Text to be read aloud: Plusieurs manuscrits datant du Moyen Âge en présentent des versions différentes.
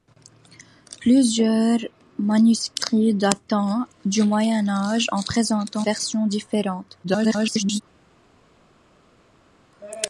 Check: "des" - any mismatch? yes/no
yes